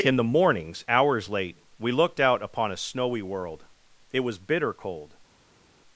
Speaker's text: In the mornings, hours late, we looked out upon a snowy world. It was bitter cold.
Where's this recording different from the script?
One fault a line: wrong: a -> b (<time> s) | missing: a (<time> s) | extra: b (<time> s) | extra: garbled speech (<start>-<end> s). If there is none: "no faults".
no faults